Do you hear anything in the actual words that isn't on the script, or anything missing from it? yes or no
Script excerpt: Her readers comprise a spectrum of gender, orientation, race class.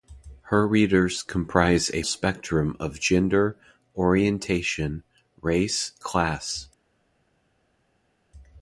no